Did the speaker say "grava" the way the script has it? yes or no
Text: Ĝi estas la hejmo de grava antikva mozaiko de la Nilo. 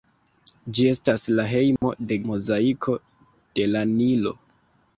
no